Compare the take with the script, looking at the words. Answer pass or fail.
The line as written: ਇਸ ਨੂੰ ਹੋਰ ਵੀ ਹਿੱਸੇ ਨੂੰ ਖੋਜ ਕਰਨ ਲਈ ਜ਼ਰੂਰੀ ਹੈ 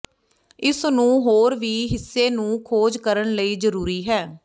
pass